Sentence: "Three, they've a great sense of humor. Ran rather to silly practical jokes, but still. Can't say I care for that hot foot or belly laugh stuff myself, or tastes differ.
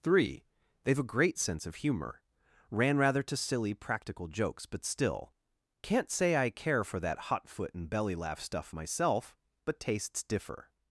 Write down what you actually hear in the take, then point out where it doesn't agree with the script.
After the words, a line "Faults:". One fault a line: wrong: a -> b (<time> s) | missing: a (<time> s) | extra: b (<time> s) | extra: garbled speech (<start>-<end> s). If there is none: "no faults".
"Three, they've a great sense of humor. Ran rather to silly practical jokes, but still. Can't say I care for that hot foot and belly laugh stuff myself, but tastes differ.
Faults:
wrong: or -> and (7.7 s)
wrong: or -> but (9.7 s)